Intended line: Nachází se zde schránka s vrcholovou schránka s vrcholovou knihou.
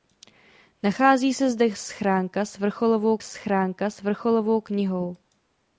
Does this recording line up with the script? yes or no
yes